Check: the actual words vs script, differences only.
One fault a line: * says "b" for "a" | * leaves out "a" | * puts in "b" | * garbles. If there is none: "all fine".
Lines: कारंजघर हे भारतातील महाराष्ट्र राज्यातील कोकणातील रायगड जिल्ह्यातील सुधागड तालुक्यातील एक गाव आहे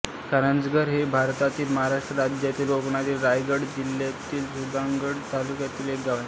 all fine